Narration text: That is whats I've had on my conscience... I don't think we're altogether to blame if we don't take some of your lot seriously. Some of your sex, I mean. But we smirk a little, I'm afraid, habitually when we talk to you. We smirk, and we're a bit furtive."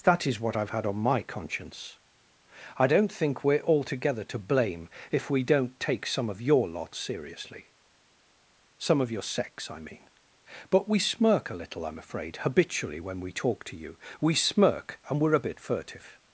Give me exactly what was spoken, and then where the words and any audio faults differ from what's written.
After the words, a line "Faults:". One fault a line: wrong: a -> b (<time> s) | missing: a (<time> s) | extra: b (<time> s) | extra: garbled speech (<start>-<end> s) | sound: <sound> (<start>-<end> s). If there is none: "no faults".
That is what I've had on my conscience... I don't think we're altogether to blame if we don't take some of your lot seriously. Some of your sex, I mean. But we smirk a little, I'm afraid, habitually when we talk to you. We smirk, and we're a bit furtive."
Faults:
wrong: whats -> what (0.4 s)